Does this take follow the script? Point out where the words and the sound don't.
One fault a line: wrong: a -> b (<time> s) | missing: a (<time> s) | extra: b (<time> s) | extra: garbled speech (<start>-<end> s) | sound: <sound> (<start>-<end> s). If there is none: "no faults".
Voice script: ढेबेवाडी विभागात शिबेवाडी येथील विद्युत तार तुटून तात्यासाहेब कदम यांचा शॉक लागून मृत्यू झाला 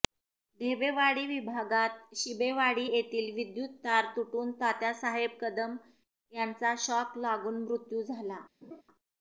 sound: laugh (8.6-8.8 s)